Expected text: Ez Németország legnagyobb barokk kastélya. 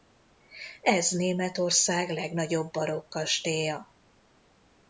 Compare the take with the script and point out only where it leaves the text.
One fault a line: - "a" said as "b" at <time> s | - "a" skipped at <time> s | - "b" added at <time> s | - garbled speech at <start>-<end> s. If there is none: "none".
none